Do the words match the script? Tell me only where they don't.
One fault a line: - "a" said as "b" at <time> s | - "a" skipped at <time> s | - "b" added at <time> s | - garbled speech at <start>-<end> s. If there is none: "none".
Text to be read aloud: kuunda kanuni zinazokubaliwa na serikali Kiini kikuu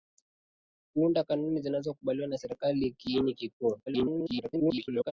- garbled speech at 3.9-5.1 s